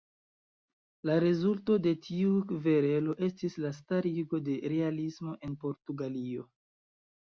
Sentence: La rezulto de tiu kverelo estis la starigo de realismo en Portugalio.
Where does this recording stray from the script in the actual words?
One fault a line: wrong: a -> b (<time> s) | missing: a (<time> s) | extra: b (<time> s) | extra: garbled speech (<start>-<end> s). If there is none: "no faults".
no faults